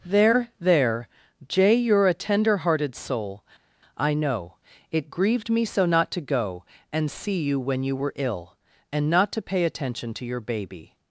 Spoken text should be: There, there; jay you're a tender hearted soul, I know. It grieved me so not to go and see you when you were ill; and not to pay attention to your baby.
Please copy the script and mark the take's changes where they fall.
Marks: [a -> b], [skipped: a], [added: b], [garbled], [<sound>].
There, there; jay you're a tender hearted soul, I know. It grieved me so not to go and see you when you were ill; and not to pay attention to your baby.